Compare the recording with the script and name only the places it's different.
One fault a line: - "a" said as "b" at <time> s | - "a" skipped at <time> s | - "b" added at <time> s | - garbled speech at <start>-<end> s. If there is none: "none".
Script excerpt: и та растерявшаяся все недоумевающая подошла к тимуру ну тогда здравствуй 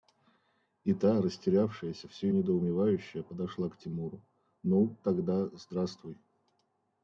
none